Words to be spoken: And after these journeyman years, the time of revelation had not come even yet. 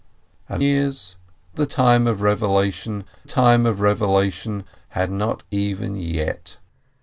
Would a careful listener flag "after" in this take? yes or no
yes